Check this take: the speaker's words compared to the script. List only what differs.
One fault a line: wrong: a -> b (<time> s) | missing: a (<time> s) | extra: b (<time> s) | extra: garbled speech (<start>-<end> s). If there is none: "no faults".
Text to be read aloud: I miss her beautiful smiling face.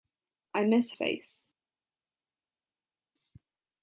missing: her beautiful smiling (0.9 s)